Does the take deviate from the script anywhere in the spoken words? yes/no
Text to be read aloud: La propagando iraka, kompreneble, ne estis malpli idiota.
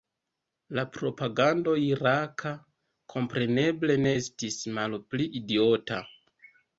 no